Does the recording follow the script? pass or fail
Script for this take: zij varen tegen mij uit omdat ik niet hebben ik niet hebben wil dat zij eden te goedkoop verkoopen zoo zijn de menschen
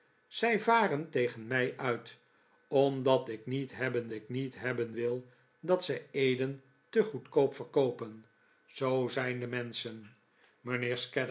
pass